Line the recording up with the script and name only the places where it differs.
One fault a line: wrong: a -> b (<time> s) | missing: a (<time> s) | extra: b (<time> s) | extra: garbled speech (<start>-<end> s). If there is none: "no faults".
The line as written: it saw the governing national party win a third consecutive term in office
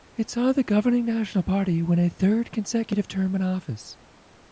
no faults